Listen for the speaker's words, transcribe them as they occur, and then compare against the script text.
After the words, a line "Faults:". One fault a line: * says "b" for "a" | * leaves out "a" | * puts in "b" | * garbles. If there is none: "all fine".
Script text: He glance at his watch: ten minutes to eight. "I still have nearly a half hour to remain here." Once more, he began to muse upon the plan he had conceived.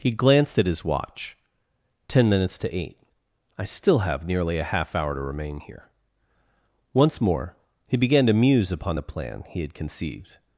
He glanced at his watch: ten minutes to eight. "I still have nearly a half hour to remain here." Once more, he began to muse upon the plan he had conceived.
Faults:
* says "glanced" for "glance"